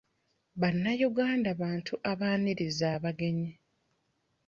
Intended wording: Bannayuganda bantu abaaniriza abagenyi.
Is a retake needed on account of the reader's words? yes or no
no